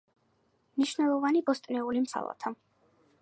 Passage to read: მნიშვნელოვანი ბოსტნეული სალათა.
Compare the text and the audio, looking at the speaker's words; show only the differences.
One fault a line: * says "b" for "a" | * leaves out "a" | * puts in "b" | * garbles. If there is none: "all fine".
all fine